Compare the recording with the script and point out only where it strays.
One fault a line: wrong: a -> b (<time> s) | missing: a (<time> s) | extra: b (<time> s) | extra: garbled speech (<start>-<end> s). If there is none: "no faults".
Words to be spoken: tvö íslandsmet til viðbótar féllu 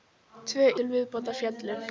missing: íslandsmet (0.7 s)